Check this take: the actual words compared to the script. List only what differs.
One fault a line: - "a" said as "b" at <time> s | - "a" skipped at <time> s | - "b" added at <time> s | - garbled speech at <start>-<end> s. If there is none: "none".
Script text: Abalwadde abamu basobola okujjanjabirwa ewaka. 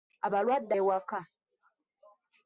- "abamu basobola okujjanjabirwa" skipped at 0.7 s